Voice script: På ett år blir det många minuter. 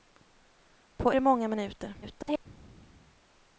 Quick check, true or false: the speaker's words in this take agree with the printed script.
false